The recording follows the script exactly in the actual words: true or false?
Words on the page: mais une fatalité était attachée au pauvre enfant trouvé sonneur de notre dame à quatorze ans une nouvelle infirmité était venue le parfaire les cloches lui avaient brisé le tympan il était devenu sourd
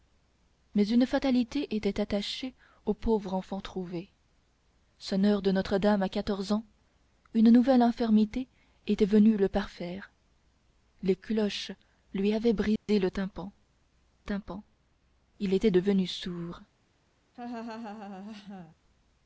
false